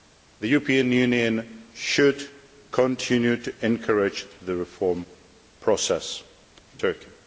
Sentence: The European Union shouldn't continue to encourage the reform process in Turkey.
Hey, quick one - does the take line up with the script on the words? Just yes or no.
no